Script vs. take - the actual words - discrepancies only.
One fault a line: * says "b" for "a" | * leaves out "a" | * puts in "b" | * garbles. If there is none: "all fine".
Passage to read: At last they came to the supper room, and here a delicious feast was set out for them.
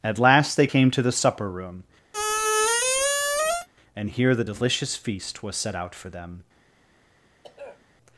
* says "the" for "a"